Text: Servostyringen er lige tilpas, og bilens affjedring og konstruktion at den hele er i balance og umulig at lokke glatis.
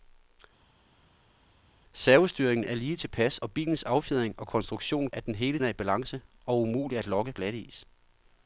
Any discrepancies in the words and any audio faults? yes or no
no